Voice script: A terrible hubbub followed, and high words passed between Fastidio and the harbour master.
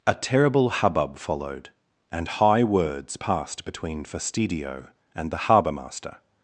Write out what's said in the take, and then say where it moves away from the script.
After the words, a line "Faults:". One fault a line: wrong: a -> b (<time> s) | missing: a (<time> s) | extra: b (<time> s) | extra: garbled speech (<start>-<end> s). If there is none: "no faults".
A terrible hubbub followed, and high words passed between Fastidio and the harbour master.
Faults:
no faults